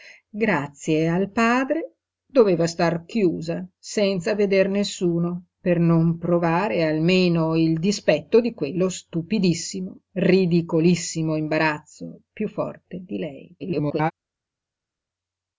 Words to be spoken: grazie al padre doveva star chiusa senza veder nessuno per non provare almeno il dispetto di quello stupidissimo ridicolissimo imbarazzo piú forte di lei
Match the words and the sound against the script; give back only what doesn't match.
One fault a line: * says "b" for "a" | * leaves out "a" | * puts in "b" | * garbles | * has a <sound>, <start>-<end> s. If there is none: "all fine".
* garbles